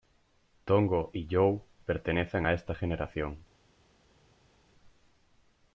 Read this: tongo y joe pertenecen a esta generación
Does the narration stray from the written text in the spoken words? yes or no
no